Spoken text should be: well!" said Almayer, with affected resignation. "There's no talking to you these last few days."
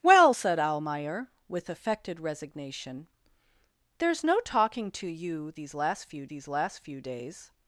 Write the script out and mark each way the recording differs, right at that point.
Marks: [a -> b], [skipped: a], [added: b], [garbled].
well!" said Almayer, with affected resignation. "There's no talking to you these last few [added: these last few] days."